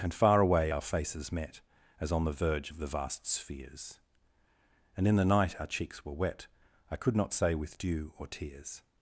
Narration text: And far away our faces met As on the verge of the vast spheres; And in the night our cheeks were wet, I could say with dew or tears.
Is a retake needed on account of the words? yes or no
yes